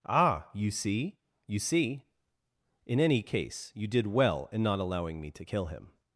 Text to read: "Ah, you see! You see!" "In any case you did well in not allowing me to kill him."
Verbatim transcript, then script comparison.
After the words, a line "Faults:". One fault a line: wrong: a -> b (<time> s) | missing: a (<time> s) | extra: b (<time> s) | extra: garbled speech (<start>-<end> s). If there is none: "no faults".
"Ah, you see! You see!" "In any case you did well in not allowing me to kill him."
Faults:
no faults